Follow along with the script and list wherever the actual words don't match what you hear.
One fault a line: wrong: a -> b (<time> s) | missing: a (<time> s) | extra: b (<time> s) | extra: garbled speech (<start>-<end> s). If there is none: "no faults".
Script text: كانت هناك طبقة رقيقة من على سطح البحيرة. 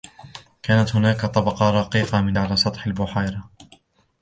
no faults